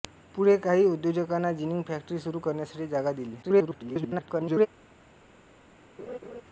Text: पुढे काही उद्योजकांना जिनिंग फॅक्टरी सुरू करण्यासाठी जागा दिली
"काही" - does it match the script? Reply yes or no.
yes